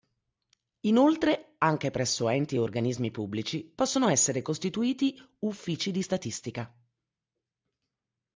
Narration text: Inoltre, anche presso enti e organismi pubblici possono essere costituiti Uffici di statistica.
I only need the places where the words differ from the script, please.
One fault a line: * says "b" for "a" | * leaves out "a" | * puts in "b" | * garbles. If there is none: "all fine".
all fine